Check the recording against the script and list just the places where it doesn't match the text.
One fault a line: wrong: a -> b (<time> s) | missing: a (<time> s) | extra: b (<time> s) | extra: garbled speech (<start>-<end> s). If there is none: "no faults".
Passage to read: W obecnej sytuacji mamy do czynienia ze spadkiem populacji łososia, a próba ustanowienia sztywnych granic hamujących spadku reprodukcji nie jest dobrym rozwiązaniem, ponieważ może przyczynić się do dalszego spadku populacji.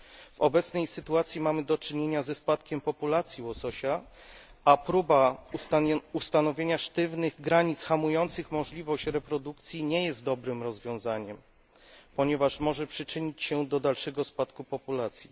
wrong: spadku -> możliwość (8.5 s)